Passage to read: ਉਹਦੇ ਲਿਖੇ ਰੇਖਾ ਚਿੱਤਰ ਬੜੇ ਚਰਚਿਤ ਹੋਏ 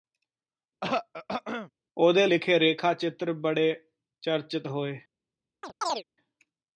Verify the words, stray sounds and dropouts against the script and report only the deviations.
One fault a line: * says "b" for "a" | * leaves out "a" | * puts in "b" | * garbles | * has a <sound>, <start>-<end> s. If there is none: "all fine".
* has a throat clearing, 0.8-1.7 s
* has a chirp, 5.6-6.0 s